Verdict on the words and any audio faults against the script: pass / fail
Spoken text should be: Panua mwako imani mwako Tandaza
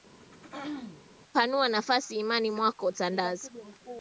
fail